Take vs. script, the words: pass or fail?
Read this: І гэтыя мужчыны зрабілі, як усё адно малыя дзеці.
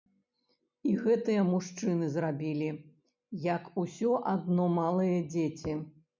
pass